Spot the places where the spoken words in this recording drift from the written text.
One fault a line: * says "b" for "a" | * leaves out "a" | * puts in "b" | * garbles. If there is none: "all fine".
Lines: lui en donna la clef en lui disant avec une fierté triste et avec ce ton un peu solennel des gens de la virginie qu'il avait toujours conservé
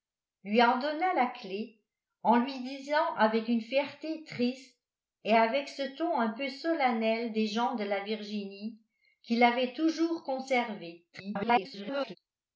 * garbles